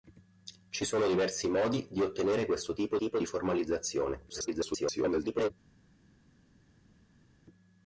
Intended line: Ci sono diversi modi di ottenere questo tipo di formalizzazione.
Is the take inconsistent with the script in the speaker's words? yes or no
yes